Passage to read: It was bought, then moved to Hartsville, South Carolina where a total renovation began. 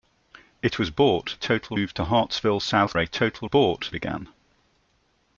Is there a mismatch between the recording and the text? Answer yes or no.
yes